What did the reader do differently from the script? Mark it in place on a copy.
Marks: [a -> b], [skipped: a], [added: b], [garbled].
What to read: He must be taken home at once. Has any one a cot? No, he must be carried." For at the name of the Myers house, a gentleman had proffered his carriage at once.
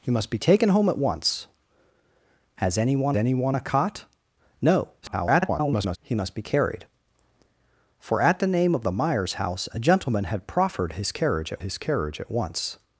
He must be taken home at once. Has any one [added: any one] a cot? No, [garbled] he must be carried." For at the name of the Myers house, a gentleman had proffered his carriage at [added: his carriage at] once.